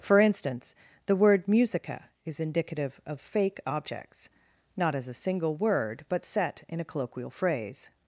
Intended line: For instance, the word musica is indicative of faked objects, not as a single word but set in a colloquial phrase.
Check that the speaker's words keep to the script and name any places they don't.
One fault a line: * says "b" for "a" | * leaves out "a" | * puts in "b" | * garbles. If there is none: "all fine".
* says "fake" for "faked"